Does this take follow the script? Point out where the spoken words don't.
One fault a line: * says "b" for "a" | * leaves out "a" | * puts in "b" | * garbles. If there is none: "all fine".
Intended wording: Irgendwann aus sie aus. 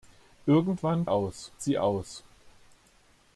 all fine